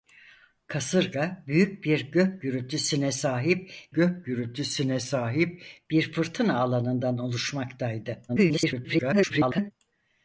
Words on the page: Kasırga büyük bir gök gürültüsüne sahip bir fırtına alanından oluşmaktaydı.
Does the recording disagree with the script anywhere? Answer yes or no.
yes